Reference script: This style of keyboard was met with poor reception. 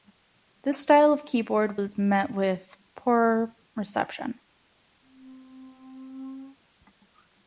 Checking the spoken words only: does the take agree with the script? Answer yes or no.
yes